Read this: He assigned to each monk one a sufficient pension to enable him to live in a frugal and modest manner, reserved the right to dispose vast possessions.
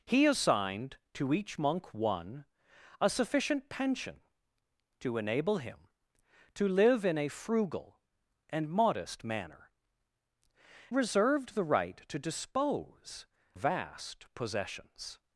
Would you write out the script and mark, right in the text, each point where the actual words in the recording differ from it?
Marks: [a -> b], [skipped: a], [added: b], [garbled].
He assigned to each monk one a sufficient pension to enable him to live in a frugal and modest manner, reserved the right to dispose vast possessions.